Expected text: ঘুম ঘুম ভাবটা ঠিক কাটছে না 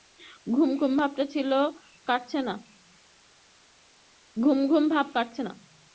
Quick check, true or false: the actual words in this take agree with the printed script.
false